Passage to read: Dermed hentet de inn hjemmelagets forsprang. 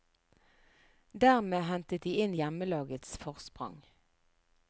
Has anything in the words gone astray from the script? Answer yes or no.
no